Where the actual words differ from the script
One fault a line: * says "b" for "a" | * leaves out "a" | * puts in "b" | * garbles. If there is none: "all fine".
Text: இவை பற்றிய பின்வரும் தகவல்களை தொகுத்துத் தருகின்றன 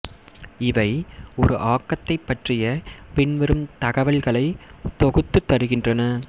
* puts in "ஒரு ஆக்கத்தைப்"